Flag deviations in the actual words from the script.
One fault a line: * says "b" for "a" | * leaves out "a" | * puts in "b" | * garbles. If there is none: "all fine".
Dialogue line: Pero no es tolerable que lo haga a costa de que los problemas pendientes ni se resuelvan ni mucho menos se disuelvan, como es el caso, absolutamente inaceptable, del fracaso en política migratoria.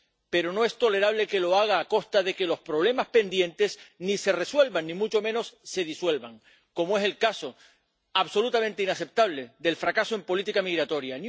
all fine